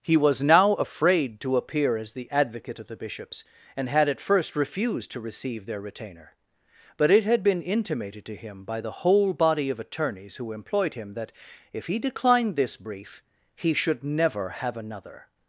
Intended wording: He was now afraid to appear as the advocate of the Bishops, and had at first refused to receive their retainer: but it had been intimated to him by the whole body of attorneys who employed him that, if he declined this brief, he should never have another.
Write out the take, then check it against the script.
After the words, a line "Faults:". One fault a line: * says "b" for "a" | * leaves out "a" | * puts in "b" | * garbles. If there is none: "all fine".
He was now afraid to appear as the advocate of the Bishops, and had at first refused to receive their retainer: but it had been intimated to him by the whole body of attorneys who employed him that, if he declined this brief, he should never have another.
Faults:
all fine